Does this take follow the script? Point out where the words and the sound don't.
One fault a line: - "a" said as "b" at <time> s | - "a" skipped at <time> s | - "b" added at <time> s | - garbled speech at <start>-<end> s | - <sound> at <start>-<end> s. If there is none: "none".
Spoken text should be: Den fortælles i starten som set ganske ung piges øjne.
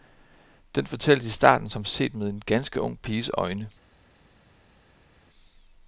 - "med en" added at 2.1 s